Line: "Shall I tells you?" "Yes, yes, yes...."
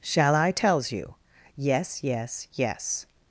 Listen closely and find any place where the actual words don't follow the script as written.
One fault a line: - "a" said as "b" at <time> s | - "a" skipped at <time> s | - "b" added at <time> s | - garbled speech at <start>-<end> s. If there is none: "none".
none